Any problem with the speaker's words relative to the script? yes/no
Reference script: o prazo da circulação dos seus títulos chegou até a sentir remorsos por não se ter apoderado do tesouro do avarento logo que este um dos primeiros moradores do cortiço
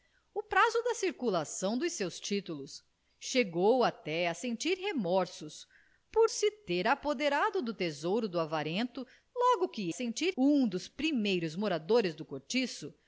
yes